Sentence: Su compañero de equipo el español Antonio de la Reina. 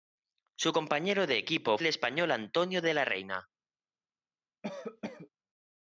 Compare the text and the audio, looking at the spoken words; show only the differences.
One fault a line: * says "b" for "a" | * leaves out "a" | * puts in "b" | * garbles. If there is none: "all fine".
all fine